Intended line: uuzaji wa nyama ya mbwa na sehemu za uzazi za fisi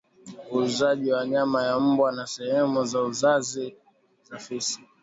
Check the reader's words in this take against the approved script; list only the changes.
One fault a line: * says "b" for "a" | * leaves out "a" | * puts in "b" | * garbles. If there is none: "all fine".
all fine